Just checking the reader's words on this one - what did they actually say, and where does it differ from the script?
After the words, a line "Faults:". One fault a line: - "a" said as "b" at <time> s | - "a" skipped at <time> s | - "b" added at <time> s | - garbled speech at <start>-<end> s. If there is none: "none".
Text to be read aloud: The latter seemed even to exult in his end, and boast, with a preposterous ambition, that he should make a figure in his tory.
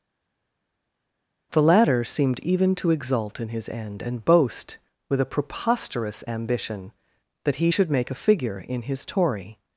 The latter seemed even to exult in his end, and boast, with a preposterous ambition, that he should make a figure in his tory.
Faults:
none